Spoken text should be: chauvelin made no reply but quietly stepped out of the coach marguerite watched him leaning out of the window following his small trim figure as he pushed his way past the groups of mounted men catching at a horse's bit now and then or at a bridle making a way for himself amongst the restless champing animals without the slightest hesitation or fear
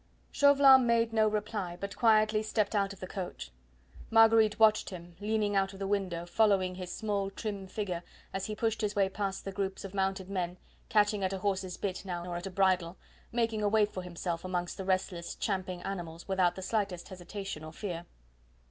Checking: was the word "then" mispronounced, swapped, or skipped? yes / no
yes